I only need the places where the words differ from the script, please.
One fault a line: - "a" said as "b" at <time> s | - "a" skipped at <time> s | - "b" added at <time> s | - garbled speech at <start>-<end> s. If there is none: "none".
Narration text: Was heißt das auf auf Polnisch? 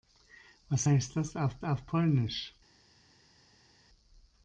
none